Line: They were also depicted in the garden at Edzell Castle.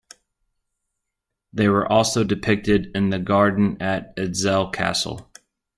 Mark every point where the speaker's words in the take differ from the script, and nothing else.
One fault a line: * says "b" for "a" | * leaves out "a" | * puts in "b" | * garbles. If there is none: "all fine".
all fine